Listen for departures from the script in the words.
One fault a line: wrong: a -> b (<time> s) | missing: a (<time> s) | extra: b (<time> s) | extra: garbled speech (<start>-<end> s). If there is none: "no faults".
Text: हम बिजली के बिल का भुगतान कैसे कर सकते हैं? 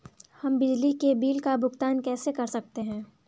no faults